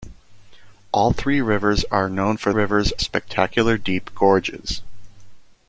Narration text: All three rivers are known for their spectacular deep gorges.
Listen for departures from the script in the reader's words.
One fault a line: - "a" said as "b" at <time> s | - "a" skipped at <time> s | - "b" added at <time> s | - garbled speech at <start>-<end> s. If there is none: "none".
- "their" said as "rivers" at 2.5 s